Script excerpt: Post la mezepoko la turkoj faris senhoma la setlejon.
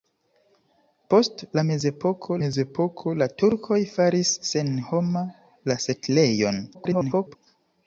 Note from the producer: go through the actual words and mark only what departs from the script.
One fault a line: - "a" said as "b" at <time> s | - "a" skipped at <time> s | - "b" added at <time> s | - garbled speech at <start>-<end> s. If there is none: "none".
- "mezepoko" added at 2.4 s
- garbled speech at 6.7-7.4 s